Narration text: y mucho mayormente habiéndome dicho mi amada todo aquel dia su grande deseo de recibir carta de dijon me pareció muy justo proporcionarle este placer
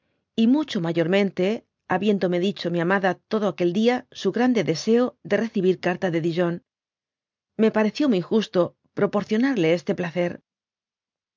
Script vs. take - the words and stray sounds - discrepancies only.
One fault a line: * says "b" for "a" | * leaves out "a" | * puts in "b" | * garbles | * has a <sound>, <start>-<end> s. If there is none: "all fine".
all fine